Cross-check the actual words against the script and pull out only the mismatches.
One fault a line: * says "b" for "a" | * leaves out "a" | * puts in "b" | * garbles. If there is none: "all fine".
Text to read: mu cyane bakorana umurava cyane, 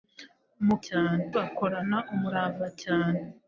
all fine